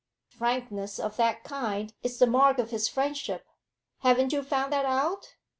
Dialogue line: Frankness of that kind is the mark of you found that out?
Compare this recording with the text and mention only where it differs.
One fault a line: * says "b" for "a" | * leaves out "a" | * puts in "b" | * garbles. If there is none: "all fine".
* puts in "his friendship haven't"